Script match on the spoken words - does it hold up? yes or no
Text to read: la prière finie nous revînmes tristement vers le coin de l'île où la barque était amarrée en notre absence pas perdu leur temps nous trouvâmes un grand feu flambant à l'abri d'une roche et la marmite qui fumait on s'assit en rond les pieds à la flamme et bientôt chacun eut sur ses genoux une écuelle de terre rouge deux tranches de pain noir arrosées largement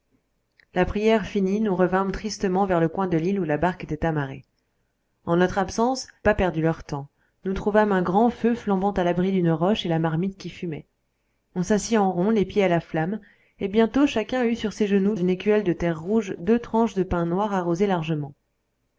yes